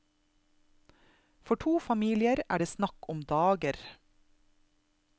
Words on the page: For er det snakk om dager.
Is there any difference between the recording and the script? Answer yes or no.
yes